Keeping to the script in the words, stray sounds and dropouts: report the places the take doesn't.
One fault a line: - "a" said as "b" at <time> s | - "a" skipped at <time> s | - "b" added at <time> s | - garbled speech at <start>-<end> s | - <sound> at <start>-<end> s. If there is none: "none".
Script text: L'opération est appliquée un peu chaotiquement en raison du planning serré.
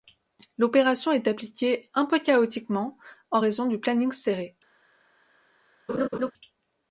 - laugh at 5.9-6.3 s